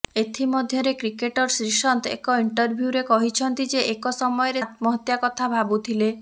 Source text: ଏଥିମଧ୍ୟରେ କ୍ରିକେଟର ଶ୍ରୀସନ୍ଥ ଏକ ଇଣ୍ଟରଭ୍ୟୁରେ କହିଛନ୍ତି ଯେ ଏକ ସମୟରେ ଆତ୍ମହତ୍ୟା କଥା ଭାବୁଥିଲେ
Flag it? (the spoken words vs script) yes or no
no